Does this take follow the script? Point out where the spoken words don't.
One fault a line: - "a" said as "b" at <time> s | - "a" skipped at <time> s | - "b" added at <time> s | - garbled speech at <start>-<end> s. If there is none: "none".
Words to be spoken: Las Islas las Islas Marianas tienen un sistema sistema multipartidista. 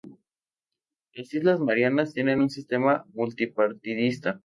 - "las Islas" skipped at 1.6 s
- "sistema" skipped at 3.0 s